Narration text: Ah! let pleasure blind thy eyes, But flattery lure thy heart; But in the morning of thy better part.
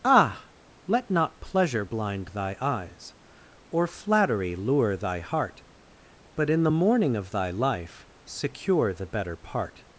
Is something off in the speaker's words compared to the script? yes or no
yes